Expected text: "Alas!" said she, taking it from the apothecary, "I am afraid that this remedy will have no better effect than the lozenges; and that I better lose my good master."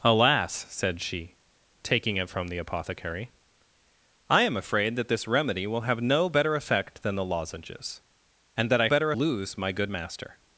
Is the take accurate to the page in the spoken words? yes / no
yes